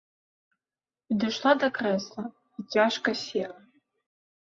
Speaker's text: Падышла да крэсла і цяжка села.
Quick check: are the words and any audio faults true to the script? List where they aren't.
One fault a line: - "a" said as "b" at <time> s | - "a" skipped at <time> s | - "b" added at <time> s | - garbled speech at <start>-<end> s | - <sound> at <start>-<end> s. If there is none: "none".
none